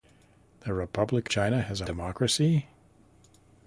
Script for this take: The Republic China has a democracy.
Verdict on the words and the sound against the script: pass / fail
pass